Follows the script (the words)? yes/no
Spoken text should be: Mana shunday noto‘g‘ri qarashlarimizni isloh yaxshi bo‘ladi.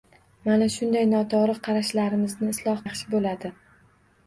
yes